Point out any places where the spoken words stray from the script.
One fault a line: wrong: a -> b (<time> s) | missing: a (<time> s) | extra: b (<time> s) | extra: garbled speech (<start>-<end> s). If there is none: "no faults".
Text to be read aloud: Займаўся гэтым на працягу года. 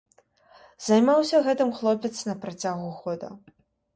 extra: хлопец (1.8 s)